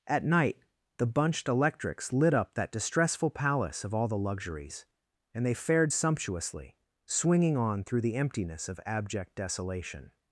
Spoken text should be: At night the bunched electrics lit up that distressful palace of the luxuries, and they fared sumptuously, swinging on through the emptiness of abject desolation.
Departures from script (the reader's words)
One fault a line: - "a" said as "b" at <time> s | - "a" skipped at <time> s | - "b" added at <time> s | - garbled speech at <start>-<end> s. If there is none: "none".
- "all" added at 3.9 s